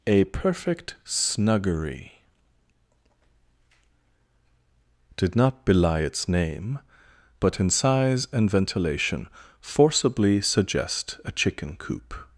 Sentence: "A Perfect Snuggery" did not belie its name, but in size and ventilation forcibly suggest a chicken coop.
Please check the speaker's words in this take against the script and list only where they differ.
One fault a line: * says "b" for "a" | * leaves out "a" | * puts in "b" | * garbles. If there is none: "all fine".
all fine